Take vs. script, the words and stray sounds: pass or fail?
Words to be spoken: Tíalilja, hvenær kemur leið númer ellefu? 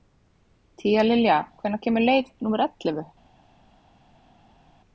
pass